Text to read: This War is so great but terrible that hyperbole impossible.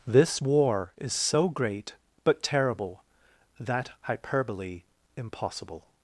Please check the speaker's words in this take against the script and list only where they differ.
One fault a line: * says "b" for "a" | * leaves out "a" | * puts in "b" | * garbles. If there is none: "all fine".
all fine